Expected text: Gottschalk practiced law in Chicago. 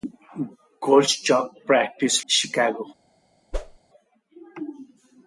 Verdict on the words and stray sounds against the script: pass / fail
fail